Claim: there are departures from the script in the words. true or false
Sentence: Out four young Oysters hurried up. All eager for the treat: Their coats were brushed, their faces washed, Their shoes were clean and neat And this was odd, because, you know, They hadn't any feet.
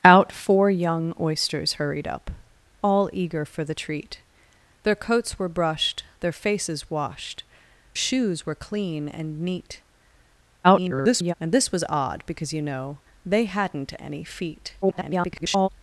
true